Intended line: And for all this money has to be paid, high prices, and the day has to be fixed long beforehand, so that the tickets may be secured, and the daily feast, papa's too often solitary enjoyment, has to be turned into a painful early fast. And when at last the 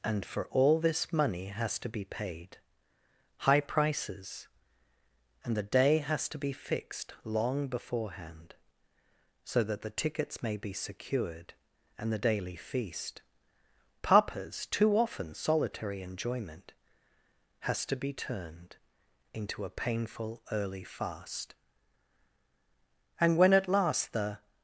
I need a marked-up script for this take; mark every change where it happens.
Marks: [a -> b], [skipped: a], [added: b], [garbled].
And for all this money has to be paid, high prices, and the day has to be fixed long beforehand, so that the tickets may be secured, and the daily feast, papa's too often solitary enjoyment, has to be turned into a painful early fast. And when at last the